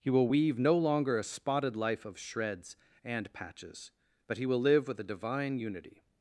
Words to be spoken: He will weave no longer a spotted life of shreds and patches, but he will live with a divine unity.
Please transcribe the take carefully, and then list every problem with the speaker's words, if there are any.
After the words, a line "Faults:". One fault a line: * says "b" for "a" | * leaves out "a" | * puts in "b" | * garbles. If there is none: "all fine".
He will weave no longer a spotted life of shreds and patches, but he will live with a divine unity.
Faults:
all fine